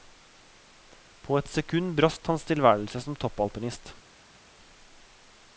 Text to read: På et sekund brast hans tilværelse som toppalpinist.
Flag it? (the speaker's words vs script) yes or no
no